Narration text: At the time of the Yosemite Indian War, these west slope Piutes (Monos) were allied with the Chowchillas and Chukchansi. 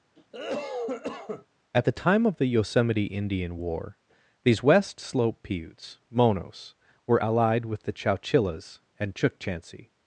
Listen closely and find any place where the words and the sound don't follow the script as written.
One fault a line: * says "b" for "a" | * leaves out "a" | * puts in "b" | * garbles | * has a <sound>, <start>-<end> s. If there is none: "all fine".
* has a cough, 0.2-1.5 s